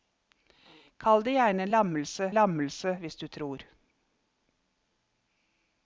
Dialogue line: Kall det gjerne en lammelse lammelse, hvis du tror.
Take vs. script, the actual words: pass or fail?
pass